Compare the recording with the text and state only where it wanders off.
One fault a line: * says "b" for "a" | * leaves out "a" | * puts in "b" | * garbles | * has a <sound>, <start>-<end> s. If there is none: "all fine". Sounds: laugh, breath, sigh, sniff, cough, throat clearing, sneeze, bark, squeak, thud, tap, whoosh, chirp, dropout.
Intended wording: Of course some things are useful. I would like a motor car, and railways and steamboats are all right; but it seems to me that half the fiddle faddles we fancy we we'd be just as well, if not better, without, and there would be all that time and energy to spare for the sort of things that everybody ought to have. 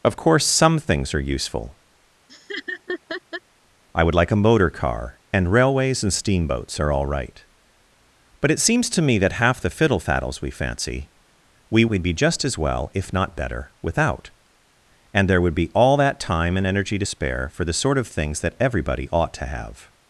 * has a laugh, 2.3-3.4 s